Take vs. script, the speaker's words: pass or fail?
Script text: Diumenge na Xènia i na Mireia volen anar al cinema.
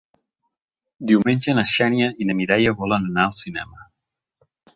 pass